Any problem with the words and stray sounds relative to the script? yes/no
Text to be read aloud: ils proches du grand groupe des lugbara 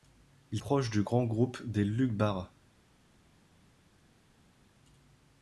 no